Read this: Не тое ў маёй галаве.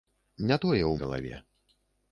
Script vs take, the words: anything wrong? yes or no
yes